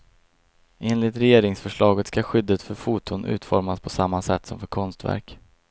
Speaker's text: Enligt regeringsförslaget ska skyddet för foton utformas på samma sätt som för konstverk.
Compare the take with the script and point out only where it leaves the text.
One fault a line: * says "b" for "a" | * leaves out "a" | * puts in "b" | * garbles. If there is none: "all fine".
all fine